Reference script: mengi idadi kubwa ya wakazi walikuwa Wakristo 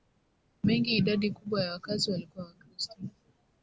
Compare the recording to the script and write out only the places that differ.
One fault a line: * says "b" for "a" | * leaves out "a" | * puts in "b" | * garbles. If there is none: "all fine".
all fine